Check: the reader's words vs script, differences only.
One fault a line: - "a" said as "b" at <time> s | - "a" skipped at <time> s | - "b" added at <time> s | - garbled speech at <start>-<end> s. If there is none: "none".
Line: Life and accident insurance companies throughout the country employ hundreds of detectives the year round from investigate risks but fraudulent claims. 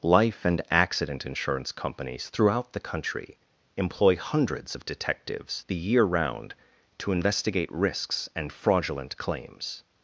- "from" said as "to" at 7.0 s
- "but" said as "and" at 8.3 s